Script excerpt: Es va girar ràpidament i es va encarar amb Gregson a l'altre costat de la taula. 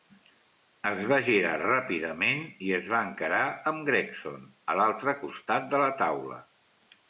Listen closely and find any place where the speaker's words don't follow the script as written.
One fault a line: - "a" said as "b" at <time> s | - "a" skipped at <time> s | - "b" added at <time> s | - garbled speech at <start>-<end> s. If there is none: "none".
none